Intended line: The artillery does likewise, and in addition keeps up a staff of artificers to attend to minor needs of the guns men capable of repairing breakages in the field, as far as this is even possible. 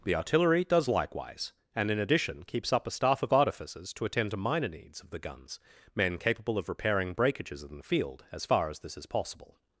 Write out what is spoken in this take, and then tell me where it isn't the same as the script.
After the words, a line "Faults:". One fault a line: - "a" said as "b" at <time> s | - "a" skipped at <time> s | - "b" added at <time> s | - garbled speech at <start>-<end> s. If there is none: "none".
The artillery does likewise, and in addition keeps up a staff of artificers to attend to minor needs of the guns men capable of repairing breakages in the field, as far as this is possible.
Faults:
- "even" skipped at 9.1 s